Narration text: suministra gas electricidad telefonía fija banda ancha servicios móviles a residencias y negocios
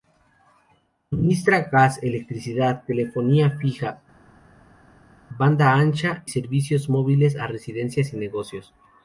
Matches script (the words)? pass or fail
pass